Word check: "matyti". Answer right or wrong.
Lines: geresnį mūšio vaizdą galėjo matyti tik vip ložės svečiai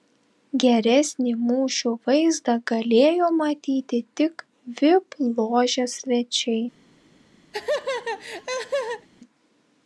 right